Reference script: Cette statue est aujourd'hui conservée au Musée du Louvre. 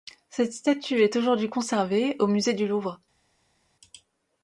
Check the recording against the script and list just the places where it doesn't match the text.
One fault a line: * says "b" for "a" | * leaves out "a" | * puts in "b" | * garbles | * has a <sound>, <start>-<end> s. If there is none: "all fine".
all fine